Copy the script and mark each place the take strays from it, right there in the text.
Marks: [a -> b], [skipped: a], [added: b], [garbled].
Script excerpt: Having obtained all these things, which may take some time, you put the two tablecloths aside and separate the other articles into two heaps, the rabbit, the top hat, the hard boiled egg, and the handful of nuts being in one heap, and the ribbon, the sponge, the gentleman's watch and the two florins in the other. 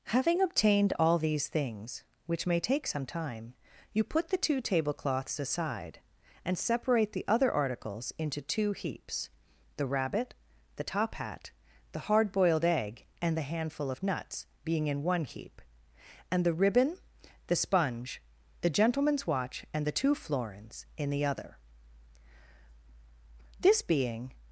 Having obtained all these things, which may take some time, you put the two tablecloths aside and separate the other articles into two heaps, the rabbit, the top hat, the hard boiled egg, and the handful of nuts being in one heap, and the ribbon, the sponge, the gentleman's watch and the two florins in the other. [added: This being]